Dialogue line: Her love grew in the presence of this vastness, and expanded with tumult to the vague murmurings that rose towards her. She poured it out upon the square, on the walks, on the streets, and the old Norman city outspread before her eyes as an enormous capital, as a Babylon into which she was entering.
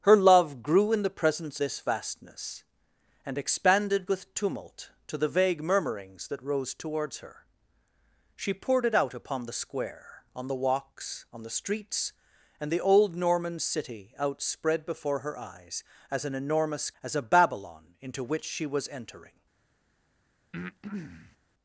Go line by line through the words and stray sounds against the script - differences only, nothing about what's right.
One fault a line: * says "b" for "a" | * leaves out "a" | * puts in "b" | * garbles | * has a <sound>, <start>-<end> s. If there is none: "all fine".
* leaves out "of"
* leaves out "capital"
* has a breath, 20.5-21.4 s